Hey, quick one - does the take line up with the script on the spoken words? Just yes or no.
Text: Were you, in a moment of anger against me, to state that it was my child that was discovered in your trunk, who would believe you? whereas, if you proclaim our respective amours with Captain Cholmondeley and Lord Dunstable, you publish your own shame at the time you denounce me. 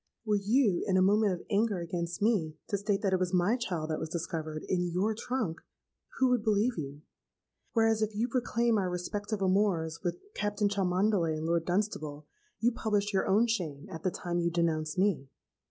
yes